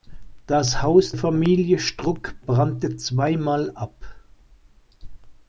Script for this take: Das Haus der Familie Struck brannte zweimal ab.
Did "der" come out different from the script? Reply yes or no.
yes